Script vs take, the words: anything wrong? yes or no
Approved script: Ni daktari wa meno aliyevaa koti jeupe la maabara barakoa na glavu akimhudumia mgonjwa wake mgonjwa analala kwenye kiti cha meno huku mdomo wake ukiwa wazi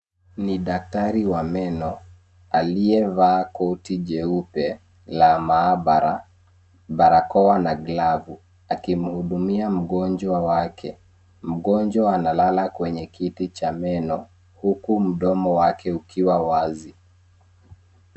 no